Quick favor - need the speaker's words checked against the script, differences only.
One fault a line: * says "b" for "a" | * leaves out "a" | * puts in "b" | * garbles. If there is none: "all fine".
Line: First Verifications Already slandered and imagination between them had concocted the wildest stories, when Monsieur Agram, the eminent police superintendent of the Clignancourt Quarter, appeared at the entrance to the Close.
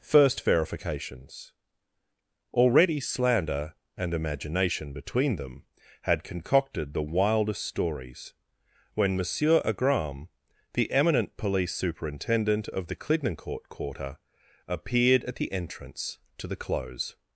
* says "slander" for "slandered"